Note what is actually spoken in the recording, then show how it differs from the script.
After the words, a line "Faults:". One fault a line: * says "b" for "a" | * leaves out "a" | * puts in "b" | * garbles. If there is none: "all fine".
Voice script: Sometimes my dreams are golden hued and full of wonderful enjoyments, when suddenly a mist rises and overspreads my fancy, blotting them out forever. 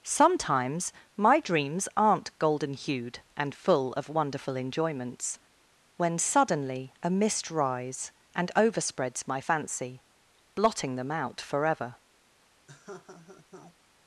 Sometimes my dreams aren't golden hued and full of wonderful enjoyments, when suddenly a mist rise and overspreads my fancy, blotting them out forever.
Faults:
* says "aren't" for "are"
* says "rise" for "rises"